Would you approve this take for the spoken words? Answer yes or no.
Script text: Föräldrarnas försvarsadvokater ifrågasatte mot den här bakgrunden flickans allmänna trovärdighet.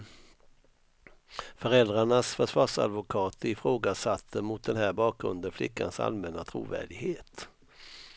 yes